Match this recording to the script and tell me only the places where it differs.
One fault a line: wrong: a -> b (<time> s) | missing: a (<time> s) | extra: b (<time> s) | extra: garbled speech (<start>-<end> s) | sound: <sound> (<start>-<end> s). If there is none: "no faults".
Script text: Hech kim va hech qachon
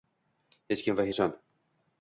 missing: hech (1.1 s)